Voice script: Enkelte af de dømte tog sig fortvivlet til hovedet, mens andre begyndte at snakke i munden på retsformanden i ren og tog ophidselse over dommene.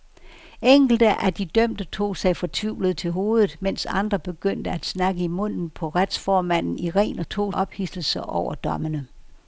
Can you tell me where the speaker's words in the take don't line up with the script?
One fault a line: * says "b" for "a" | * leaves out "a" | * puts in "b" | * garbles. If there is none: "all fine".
all fine